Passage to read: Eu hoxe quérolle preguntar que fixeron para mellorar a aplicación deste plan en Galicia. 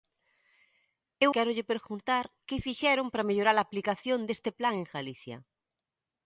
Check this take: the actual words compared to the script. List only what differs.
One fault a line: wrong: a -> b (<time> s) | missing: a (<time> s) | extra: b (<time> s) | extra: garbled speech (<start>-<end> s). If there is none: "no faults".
missing: hoxe (1.3 s)